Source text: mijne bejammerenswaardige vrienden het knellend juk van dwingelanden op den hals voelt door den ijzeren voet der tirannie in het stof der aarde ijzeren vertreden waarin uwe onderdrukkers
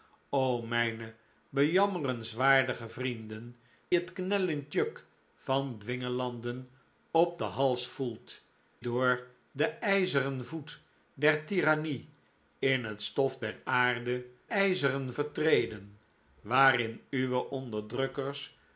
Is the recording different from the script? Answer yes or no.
no